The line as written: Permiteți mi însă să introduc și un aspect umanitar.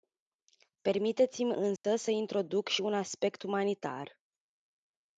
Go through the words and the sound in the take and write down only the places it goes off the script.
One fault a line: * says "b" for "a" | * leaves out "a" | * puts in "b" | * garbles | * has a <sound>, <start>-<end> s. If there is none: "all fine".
* has a dropout, 1.8-1.8 s